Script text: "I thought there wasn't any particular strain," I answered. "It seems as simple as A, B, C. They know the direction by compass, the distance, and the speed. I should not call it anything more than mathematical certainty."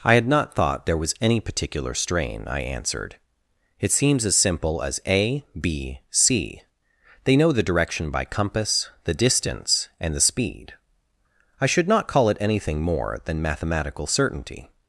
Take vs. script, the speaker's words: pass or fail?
fail